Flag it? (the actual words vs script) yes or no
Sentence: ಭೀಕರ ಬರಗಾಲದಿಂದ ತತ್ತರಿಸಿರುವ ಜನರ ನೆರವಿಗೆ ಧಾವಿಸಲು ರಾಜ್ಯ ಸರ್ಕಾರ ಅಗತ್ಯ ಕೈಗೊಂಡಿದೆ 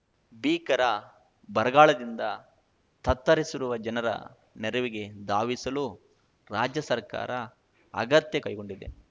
no